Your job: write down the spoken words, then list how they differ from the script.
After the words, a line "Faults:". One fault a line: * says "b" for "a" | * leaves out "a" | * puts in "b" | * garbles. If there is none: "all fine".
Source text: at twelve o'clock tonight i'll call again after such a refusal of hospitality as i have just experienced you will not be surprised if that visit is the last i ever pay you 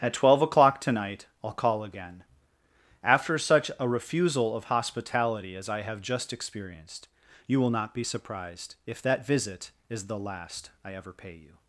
at twelve o'clock tonight i'll call again after such a refusal of hospitality as i have just experienced you will not be surprised if that visit is the last i ever pay you
Faults:
all fine